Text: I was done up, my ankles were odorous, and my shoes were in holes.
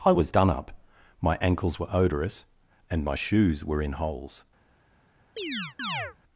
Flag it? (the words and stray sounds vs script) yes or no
yes